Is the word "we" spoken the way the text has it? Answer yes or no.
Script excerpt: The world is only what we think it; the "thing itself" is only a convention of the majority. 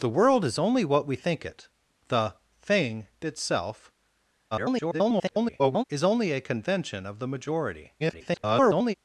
yes